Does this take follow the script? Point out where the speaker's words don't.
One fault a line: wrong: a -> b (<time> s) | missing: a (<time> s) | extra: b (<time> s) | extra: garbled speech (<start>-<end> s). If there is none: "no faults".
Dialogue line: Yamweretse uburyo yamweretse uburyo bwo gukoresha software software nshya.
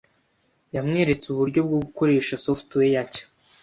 missing: yamweretse uburyo (1.6 s)
missing: software (3.0 s)